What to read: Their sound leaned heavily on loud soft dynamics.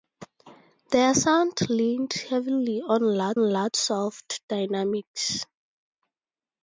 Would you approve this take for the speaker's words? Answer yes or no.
no